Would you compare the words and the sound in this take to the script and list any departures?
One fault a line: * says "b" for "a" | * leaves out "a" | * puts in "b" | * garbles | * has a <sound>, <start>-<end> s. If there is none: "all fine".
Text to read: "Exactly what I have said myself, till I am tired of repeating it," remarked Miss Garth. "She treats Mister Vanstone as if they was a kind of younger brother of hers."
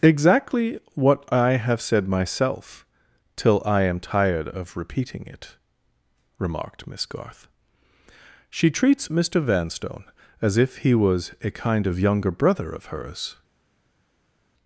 * says "he" for "they"